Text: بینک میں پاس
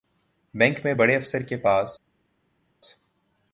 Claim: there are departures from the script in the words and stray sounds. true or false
true